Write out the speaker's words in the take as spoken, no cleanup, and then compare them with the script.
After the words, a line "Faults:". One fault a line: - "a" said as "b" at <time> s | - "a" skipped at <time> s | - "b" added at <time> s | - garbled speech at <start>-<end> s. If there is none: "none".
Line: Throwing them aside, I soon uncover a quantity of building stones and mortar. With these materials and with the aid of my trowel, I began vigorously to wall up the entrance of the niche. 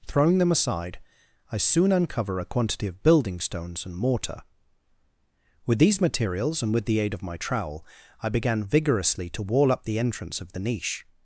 Throwing them aside, I soon uncover a quantity of building stones and mortar. With these materials and with the aid of my trowel, I began vigorously to wall up the entrance of the niche.
Faults:
none